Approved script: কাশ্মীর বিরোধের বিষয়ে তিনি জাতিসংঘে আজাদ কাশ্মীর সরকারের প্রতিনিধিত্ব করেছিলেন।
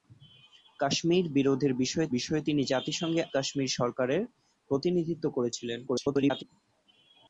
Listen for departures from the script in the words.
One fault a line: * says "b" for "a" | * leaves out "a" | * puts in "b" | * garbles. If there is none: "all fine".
* puts in "বিষয়ে"
* leaves out "আজাদ"
* garbles